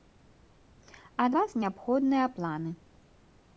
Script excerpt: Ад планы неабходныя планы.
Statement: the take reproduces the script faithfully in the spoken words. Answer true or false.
false